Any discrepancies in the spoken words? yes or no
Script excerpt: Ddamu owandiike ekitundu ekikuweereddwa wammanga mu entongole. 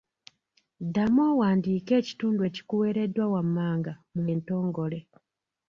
no